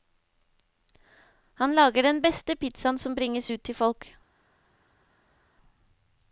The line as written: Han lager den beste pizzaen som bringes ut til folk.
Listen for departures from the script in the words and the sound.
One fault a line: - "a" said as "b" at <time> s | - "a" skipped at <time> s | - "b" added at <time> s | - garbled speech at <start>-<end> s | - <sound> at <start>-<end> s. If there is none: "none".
none